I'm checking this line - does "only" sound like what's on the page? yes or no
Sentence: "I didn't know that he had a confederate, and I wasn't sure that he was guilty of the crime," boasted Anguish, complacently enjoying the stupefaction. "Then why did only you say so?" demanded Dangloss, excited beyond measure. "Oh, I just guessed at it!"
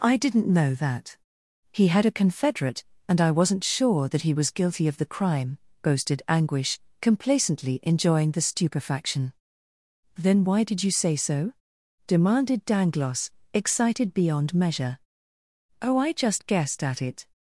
no